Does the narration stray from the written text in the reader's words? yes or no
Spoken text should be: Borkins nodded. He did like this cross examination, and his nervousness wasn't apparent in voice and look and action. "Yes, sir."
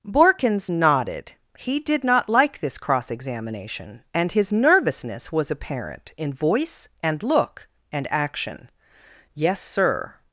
yes